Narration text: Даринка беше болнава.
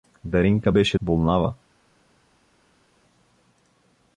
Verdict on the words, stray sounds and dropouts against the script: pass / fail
pass